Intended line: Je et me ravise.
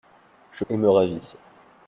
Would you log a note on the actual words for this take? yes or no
no